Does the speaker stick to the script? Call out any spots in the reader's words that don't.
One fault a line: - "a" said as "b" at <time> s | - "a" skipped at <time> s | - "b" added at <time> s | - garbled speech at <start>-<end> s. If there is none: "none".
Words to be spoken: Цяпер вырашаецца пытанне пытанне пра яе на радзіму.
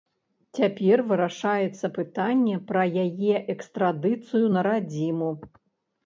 - "пытанне" skipped at 2.5 s
- "экстрадыцыю" added at 3.5 s